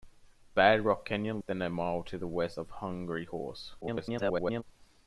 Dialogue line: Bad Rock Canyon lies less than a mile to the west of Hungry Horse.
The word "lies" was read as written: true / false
false